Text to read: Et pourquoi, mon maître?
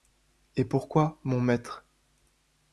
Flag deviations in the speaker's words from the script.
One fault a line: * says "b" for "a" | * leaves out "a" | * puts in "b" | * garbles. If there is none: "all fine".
all fine